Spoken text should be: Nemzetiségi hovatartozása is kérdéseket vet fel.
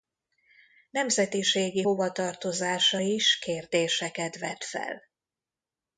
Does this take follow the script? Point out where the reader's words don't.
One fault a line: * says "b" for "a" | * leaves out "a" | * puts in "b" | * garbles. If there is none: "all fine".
all fine